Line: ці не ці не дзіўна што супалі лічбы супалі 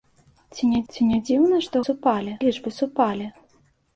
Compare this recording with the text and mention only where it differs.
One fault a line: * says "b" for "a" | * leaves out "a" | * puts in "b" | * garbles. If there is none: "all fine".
all fine